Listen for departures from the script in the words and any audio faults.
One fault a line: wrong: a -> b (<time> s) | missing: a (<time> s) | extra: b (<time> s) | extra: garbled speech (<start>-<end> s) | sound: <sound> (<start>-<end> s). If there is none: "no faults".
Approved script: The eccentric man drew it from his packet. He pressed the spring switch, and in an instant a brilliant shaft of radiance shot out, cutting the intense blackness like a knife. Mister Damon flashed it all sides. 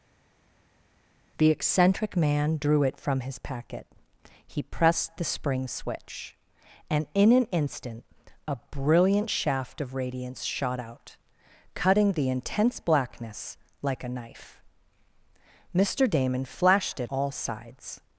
no faults